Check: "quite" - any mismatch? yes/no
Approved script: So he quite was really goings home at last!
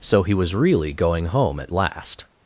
yes